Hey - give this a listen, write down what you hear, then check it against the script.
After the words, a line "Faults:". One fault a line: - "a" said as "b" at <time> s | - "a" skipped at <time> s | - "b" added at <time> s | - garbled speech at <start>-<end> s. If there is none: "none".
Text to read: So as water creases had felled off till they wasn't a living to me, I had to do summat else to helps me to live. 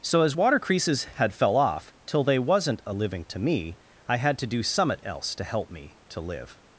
So as water creases had fell off till they wasn't a living to me, I had to do summat else to help me to live.
Faults:
- "felled" said as "fell" at 1.3 s
- "helps" said as "help" at 5.4 s